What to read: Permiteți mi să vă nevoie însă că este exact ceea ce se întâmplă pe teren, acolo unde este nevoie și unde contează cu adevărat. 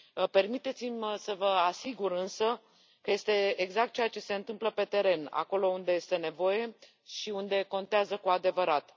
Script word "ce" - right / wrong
right